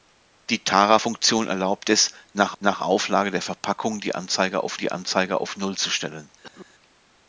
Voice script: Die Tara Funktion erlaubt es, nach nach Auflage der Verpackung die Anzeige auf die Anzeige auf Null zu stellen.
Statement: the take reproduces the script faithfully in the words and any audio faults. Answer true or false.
false